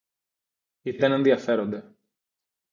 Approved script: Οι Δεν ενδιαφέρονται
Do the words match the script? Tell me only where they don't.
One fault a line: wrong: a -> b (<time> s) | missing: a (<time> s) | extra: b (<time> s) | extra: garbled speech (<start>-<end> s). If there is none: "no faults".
no faults